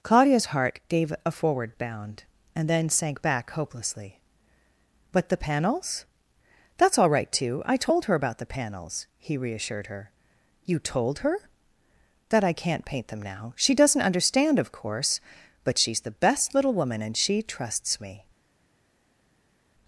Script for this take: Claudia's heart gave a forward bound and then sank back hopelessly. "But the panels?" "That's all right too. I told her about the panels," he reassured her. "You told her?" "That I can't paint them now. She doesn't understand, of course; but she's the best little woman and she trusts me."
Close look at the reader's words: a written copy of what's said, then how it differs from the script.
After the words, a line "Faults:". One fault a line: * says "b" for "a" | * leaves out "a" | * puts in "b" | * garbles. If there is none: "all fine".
Claudia's heart gave a forward bound and then sank back hopelessly. "But the panels?" "That's all right too. I told her about the panels," he reassured her. "You told her?" "That I can't paint them now. She doesn't understand, of course; but she's the best little woman and she trusts me."
Faults:
all fine